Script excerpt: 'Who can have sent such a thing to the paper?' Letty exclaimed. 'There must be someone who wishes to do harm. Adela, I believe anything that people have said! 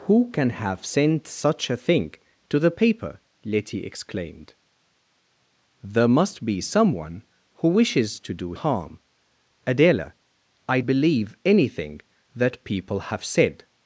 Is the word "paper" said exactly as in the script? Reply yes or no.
yes